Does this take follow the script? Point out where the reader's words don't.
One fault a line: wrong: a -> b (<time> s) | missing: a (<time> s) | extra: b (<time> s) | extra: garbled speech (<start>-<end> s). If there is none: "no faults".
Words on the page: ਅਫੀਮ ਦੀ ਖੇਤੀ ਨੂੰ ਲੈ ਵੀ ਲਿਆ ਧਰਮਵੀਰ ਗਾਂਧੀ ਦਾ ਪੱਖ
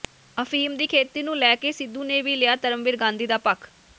extra: ਕੇ ਸਿੱਧੂ ਨੇ (1.6 s)